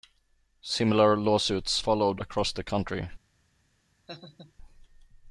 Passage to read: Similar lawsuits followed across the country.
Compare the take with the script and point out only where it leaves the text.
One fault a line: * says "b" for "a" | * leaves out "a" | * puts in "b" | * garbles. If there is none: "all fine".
all fine